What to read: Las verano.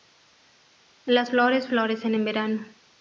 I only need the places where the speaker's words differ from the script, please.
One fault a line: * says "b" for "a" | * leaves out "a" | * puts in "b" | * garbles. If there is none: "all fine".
* puts in "flores florecen en"